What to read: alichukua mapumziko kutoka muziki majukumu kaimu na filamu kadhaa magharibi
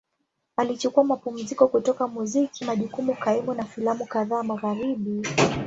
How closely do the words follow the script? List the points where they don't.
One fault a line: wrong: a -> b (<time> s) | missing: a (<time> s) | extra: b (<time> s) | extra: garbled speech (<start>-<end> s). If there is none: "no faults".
no faults